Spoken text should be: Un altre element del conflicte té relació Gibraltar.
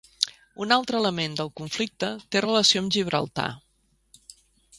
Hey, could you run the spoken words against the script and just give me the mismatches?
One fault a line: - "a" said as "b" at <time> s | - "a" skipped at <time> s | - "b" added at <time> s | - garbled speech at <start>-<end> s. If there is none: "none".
- "amb" added at 2.8 s